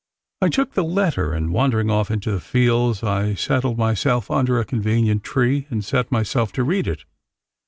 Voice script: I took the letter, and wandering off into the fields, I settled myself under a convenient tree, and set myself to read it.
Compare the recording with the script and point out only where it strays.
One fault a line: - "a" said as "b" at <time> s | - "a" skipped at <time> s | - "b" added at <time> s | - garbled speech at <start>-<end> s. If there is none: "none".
none